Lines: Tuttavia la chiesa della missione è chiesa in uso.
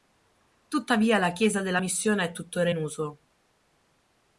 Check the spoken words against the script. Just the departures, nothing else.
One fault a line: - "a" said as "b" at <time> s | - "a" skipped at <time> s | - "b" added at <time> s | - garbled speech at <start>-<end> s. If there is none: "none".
- "chiesa" said as "tuttora" at 2.3 s